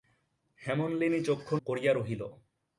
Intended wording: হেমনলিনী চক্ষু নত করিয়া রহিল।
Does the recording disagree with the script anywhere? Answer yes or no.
yes